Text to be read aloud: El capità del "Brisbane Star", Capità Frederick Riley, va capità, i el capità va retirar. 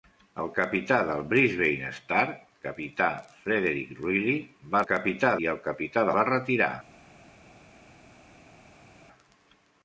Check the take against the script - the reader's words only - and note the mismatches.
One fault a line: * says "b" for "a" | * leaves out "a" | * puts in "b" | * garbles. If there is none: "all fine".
all fine